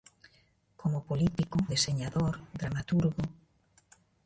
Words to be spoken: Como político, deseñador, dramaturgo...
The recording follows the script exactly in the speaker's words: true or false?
true